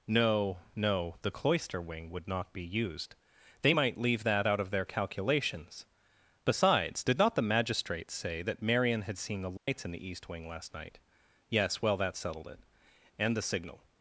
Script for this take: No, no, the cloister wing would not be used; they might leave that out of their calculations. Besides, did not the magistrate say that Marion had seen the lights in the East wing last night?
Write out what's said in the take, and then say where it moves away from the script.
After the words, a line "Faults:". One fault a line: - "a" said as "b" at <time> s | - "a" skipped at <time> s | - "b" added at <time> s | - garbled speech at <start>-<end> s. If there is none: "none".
No, no, the cloister wing would not be used; they might leave that out of their calculations. Besides, did not the magistrate say that Marion had seen the lights in the East wing last night? Yes, well, that settled it. And the signal
Faults:
- "Yes well that settled it And the signal" added at 11.5 s